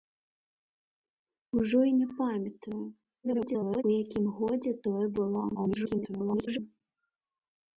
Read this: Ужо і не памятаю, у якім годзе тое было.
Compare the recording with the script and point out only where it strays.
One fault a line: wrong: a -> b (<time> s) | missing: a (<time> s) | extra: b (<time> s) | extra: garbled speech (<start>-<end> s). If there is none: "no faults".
extra: garbled speech (3.2-3.8 s)
extra: garbled speech (5.5-6.6 s)